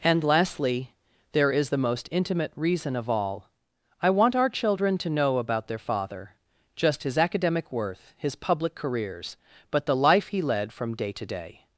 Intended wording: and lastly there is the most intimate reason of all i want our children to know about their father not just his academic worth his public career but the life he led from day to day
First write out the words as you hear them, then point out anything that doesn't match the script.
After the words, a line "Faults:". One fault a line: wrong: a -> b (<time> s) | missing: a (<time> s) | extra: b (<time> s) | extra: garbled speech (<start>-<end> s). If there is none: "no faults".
and lastly there is the most intimate reason of all i want our children to know about their father just his academic worth his public careers but the life he led from day to day
Faults:
missing: not (6.3 s)
wrong: career -> careers (8.7 s)